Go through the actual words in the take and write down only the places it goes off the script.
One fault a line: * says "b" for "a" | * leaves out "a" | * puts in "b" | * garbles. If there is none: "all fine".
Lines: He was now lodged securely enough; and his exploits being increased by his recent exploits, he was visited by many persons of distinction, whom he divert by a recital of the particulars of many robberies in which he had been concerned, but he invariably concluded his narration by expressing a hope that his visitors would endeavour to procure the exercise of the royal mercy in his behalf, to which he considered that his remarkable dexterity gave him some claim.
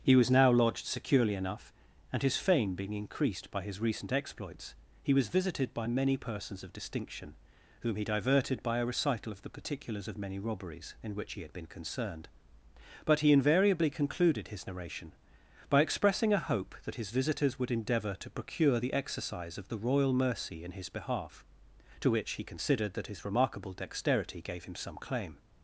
* says "fame" for "exploits"
* says "diverted" for "divert"